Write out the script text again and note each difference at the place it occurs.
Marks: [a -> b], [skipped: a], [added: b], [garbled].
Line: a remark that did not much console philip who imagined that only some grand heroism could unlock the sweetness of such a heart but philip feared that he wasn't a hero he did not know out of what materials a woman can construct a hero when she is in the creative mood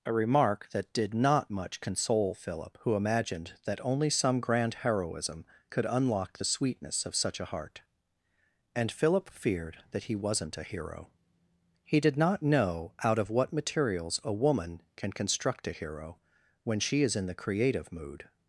a remark that did not much console philip who imagined that only some grand heroism could unlock the sweetness of such a heart [but -> and] philip feared that he wasn't a hero he did not know out of what materials a woman can construct a hero when she is in the creative mood